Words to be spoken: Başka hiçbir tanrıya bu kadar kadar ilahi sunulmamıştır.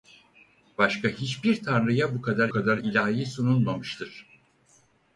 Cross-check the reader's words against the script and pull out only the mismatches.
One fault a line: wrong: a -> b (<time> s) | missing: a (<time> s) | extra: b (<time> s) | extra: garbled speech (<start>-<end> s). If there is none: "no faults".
no faults